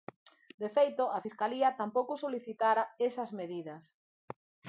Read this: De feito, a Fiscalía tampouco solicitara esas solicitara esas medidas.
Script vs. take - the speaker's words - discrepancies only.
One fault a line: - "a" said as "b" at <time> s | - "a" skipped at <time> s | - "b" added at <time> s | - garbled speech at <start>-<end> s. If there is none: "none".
- "solicitara esas" skipped at 3.3 s